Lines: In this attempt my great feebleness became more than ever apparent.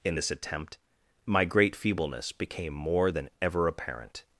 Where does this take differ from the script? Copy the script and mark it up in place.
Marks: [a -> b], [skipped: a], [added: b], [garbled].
In this attempt my great feebleness became more than ever apparent.